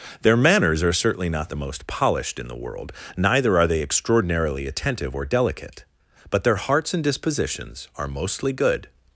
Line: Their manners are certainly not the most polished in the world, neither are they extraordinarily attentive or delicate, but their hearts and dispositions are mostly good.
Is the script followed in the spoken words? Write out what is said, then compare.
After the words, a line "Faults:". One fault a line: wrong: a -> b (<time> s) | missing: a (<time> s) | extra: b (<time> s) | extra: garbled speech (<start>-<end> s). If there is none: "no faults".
Their manners are certainly not the most polished in the world, neither are they extraordinarily attentive or delicate, but their hearts and dispositions are mostly good.
Faults:
no faults